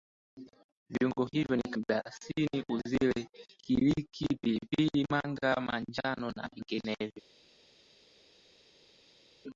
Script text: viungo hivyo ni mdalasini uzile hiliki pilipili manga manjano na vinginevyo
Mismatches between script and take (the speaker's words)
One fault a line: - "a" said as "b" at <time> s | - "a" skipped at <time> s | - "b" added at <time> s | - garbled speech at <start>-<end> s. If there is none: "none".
none